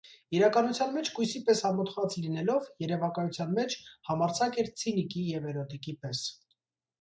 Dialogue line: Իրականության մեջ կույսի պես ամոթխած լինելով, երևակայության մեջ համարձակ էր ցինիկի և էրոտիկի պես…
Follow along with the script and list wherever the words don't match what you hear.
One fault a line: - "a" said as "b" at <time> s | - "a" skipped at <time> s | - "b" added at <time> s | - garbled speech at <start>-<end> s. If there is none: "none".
none